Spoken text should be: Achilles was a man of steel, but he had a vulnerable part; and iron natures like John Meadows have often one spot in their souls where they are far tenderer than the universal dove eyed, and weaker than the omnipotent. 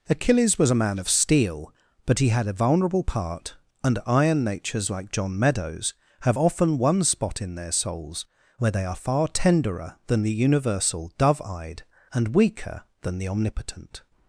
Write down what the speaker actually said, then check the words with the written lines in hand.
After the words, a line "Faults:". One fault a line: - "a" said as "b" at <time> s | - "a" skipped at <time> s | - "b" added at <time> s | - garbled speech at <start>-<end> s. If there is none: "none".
Achilles was a man of steel, but he had a vulnerable part; and iron natures like John Meadows have often one spot in their souls where they are far tenderer than the universal dove eyed, and weaker than the omnipotent.
Faults:
none